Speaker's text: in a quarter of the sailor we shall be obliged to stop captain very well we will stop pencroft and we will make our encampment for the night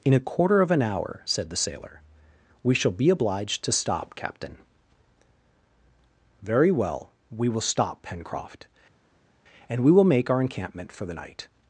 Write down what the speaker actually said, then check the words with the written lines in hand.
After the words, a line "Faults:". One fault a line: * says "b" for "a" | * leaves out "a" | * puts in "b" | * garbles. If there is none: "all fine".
in a quarter of an hour said the sailor we shall be obliged to stop captain very well we will stop pencroft and we will make our encampment for the night
Faults:
* puts in "an hour said"